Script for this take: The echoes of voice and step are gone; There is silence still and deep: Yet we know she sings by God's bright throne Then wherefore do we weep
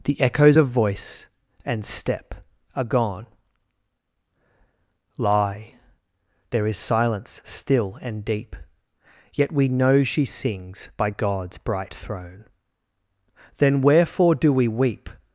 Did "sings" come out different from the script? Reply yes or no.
no